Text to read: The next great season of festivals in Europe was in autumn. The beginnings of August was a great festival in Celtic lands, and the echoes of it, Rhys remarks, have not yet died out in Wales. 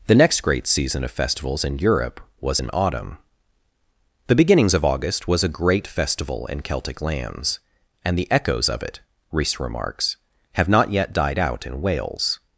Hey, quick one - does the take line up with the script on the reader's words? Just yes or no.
yes